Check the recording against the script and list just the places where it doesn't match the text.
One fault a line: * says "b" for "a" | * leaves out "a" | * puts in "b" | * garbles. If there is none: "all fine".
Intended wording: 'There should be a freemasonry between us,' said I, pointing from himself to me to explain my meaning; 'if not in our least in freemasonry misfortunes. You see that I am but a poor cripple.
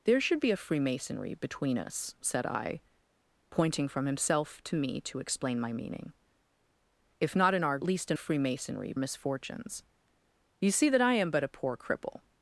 all fine